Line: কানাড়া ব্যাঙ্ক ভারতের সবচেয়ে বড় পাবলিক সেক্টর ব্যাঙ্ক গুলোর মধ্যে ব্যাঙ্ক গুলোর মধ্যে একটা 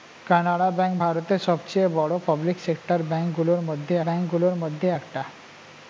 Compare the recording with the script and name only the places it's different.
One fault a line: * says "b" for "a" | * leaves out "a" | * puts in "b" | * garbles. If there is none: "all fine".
all fine